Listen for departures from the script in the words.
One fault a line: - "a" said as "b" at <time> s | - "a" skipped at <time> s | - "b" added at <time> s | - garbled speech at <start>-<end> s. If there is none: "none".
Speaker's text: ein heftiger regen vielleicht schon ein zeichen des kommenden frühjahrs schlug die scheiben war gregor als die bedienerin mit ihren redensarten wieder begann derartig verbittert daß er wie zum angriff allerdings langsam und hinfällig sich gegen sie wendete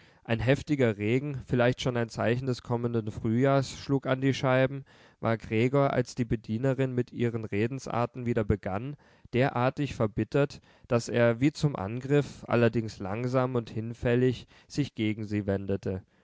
- "an" added at 4.1 s